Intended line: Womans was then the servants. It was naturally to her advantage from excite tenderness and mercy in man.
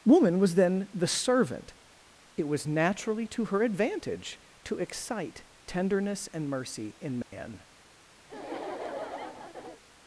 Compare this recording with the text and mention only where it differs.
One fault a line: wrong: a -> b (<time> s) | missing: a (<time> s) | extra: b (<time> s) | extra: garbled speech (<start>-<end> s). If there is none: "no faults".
wrong: Womans -> Woman (0.1 s)
wrong: servants -> servant (1.1 s)
wrong: from -> to (4.6 s)